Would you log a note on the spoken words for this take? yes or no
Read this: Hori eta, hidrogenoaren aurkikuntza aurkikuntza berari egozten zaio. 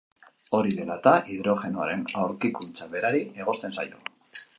yes